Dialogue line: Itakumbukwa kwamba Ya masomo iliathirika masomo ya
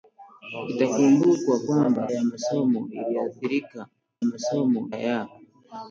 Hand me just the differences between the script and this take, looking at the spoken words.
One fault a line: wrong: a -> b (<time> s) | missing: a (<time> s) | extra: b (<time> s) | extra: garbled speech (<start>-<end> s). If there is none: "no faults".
no faults